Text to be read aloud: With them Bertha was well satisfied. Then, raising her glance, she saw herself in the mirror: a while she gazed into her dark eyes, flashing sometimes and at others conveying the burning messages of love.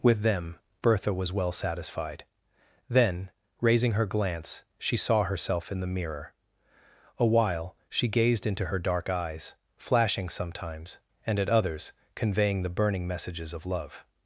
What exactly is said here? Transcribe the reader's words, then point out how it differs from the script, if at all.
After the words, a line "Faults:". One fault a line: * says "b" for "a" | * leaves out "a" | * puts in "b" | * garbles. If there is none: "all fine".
With them Bertha was well satisfied. Then, raising her glance, she saw herself in the mirror: a while she gazed into her dark eyes, flashing sometimes and at others conveying the burning messages of love.
Faults:
all fine